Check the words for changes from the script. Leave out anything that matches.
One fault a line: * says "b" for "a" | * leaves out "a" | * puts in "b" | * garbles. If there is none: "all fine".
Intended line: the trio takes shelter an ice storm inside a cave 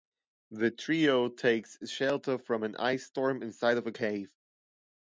* puts in "from"
* puts in "of"